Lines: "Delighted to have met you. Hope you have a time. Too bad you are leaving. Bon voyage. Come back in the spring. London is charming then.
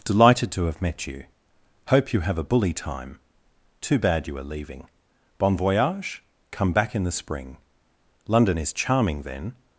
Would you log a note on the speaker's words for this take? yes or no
yes